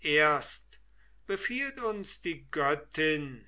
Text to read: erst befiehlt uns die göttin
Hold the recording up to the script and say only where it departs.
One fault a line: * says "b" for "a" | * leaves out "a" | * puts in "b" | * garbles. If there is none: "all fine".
all fine